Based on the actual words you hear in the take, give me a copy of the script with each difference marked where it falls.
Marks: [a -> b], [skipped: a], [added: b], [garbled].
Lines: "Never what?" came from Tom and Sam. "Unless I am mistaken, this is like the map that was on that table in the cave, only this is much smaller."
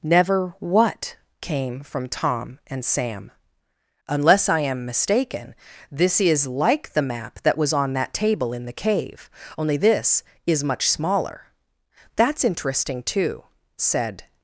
"Never what?" came from Tom and Sam. "Unless I am mistaken, this is like the map that was on that table in the cave, only this is much smaller." [added: That's interesting too said]